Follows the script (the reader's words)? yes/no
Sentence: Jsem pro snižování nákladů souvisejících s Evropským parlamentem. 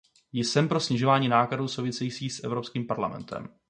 yes